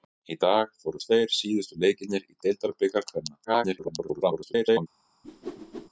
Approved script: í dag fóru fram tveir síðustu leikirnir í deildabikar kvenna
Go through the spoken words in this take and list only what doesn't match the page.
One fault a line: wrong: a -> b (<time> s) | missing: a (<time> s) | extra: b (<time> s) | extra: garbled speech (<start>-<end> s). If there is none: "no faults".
missing: fram (1.0 s)
extra: garbled speech (3.4-4.9 s)